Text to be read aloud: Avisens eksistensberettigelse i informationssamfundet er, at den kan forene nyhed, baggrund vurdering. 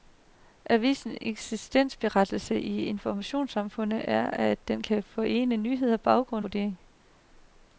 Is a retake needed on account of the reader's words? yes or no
no